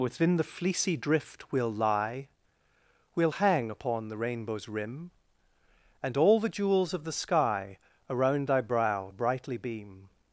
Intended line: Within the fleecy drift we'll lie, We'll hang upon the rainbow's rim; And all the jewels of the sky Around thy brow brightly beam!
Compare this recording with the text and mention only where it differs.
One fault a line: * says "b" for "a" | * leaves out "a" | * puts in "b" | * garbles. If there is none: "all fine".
all fine